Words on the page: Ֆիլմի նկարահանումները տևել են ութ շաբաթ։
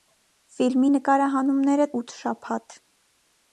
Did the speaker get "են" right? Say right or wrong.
wrong